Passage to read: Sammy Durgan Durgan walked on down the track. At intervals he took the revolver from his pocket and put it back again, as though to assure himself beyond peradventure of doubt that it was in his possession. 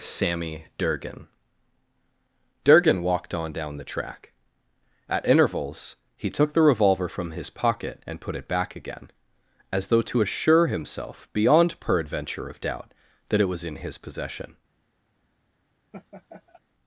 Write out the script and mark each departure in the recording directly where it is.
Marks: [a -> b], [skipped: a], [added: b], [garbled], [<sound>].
Sammy Durgan Durgan walked on down the track. At intervals he took the revolver from his pocket and put it back again, as though to assure himself beyond peradventure of doubt that it was in his possession. [laugh]